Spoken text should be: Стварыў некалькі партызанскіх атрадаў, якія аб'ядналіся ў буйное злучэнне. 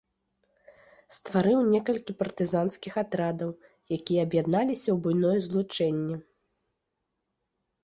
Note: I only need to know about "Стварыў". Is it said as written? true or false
true